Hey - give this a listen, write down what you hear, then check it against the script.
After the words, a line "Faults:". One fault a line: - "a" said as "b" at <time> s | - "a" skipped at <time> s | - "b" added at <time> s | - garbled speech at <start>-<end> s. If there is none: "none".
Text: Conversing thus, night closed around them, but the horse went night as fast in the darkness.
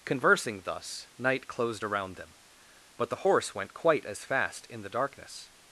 Conversing thus, night closed around them, but the horse went quite as fast in the darkness.
Faults:
- "night" said as "quite" at 3.7 s